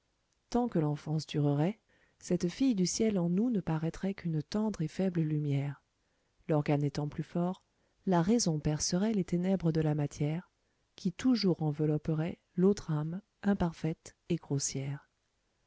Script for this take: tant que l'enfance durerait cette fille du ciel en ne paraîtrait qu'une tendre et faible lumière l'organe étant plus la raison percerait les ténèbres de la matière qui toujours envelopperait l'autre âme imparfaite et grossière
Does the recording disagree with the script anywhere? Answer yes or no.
yes